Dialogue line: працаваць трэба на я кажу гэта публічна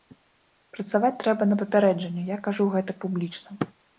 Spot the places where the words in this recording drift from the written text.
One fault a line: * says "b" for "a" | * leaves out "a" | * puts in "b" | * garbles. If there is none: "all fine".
* puts in "папярэджанне"